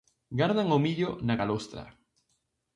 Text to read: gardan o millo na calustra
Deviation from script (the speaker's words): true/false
false